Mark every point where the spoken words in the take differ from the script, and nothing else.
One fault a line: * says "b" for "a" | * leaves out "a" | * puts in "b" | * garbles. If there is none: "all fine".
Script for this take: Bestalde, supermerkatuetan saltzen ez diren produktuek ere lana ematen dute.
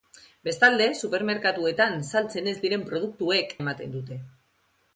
* leaves out "ere lana"